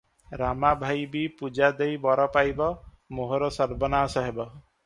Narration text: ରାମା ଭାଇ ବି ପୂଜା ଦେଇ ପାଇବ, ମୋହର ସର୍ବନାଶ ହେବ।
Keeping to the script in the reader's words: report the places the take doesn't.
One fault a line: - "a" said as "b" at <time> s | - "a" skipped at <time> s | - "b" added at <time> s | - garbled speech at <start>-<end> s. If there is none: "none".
- "ବର" added at 2.1 s